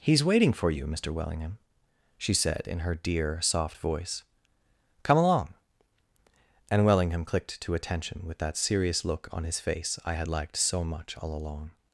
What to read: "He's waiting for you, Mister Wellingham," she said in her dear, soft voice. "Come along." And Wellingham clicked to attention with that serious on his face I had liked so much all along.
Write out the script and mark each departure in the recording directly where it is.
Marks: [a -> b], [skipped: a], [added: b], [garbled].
"He's waiting for you, Mister Wellingham," she said in her dear, soft voice. "Come along." And Wellingham clicked to attention with that serious [added: look] on his face I had liked so much all along.